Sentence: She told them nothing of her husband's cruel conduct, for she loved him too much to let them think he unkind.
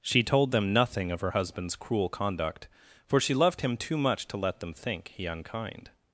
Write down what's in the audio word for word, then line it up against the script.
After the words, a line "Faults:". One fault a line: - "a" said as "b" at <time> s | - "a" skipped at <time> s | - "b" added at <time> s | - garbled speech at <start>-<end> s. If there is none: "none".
She told them nothing of her husband's cruel conduct, for she loved him too much to let them think he unkind.
Faults:
none